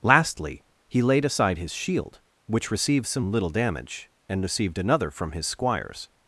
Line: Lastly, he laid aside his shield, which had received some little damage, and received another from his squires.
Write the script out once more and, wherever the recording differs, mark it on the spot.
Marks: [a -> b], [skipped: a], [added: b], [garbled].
Lastly, he laid aside his shield, which [skipped: had] received some little damage, and received another from his squires.